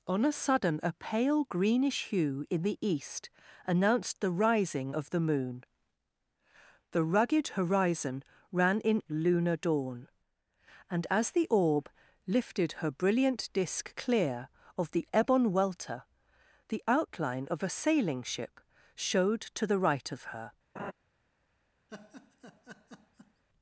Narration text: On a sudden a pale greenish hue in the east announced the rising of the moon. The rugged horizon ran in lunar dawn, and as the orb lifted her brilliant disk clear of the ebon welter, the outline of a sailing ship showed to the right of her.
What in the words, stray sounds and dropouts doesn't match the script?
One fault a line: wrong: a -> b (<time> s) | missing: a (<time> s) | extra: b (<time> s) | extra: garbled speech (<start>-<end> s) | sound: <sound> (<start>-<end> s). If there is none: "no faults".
sound: laugh (20.8-20.9 s)
sound: laugh (21.9-23.4 s)